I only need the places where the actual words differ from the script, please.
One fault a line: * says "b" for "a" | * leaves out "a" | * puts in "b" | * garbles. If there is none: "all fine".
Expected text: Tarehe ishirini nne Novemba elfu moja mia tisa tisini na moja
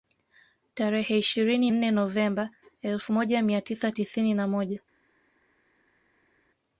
all fine